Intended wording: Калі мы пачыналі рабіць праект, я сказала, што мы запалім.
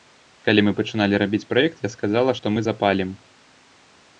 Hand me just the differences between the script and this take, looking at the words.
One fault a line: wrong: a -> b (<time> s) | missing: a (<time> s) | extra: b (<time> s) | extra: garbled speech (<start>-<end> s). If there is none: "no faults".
no faults